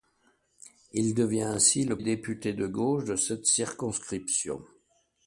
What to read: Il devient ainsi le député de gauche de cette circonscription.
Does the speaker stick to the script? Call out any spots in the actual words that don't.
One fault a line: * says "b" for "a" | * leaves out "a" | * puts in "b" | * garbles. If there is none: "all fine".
all fine